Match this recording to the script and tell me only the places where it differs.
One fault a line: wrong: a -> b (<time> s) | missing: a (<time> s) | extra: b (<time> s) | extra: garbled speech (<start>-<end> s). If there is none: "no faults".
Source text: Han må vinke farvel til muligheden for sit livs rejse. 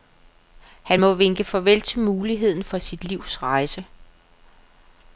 no faults